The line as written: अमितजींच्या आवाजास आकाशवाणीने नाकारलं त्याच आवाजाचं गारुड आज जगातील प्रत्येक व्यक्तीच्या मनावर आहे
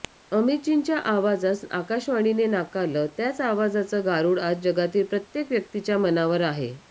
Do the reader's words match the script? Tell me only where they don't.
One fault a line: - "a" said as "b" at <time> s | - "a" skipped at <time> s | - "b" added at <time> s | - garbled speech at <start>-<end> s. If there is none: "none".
none